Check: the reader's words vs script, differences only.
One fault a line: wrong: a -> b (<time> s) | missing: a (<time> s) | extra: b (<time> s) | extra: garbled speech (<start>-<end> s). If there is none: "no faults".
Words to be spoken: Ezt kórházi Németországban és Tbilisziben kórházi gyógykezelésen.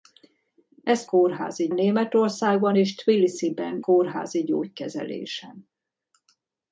no faults